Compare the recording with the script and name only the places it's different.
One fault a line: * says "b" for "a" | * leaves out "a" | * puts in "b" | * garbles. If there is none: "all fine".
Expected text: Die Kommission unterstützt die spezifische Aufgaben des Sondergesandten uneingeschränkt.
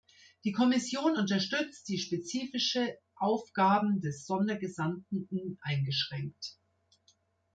all fine